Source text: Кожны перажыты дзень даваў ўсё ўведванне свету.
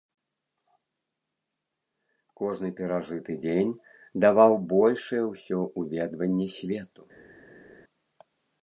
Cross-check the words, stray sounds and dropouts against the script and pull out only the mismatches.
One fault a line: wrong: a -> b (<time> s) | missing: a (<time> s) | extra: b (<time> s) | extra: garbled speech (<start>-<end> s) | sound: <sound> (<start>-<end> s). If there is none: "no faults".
extra: большае (4.8 s)